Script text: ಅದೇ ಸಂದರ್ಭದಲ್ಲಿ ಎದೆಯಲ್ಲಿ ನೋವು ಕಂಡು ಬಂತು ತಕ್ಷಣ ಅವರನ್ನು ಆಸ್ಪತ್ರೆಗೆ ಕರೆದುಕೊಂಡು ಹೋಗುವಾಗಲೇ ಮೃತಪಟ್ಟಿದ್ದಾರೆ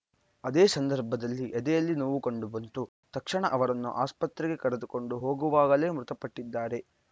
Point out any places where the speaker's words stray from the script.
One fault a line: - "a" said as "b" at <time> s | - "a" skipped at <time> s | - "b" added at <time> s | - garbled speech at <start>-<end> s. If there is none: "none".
none